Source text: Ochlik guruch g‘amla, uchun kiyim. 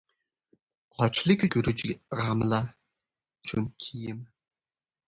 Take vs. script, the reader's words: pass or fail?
pass